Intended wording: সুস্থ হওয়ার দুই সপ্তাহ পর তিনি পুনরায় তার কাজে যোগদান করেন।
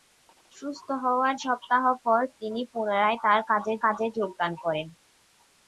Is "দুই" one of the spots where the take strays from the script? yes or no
yes